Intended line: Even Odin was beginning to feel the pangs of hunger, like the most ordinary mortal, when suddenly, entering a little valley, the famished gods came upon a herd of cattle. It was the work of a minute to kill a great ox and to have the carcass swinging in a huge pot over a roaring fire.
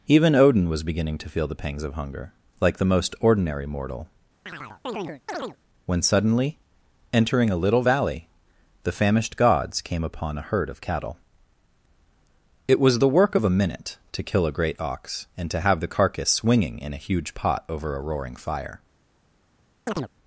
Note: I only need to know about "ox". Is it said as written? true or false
true